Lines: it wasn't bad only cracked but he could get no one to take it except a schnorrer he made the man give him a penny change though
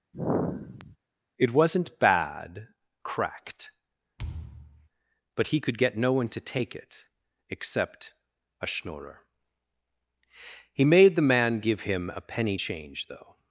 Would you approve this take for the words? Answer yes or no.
no